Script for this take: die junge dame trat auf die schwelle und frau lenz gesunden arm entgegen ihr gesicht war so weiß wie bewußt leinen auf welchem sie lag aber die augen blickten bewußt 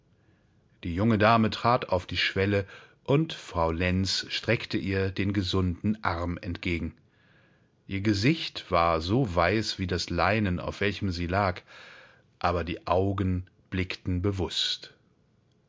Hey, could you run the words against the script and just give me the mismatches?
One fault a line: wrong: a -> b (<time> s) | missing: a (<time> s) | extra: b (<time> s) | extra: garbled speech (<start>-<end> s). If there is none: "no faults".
extra: streckte ihr den (4.3 s)
wrong: bewußt -> das (9.8 s)